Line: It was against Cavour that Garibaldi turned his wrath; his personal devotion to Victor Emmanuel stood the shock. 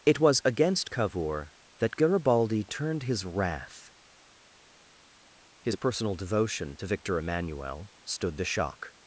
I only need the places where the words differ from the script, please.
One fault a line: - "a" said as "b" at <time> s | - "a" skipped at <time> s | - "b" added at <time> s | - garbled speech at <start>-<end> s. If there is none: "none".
none